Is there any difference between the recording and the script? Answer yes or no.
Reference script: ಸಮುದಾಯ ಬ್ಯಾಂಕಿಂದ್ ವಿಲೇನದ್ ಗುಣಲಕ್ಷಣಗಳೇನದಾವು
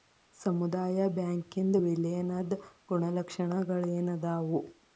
no